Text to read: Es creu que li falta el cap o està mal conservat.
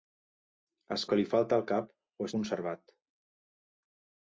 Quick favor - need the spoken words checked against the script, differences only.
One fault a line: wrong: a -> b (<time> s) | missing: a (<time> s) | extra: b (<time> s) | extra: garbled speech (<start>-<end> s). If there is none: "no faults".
missing: creu (1.0 s)
missing: està mal (2.3 s)